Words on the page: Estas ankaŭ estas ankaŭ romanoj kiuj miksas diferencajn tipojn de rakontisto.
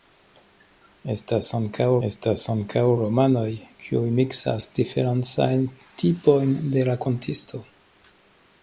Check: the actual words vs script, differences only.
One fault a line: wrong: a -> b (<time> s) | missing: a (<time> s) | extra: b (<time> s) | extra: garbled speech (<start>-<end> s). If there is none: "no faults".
no faults